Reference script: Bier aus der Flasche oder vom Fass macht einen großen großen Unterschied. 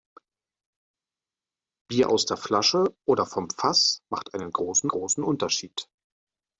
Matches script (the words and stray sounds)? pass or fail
pass